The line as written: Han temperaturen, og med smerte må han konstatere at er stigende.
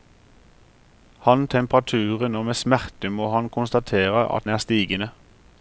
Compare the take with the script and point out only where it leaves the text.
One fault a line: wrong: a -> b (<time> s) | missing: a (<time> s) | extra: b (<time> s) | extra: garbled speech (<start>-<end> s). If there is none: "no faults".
no faults